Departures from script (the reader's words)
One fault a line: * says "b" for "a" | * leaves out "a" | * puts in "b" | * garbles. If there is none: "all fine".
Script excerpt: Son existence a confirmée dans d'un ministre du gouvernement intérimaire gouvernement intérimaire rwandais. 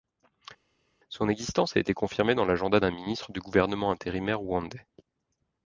* puts in "été"
* puts in "l'agenda"
* leaves out "gouvernement intérimaire"